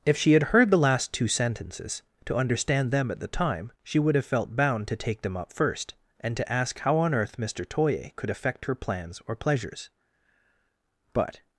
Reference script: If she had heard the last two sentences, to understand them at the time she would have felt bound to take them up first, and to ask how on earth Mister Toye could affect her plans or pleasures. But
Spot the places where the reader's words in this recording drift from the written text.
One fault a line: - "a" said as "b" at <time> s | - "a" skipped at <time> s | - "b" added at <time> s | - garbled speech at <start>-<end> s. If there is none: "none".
none